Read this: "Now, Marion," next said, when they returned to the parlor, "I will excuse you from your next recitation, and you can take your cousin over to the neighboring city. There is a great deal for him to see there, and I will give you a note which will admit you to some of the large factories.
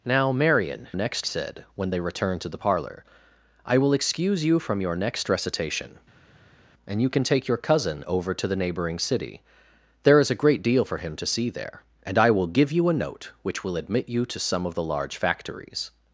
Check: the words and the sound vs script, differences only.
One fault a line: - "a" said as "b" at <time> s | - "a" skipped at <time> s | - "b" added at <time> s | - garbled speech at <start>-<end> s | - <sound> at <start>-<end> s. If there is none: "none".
none